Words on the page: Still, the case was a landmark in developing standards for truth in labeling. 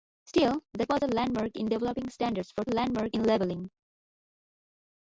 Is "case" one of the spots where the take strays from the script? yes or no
yes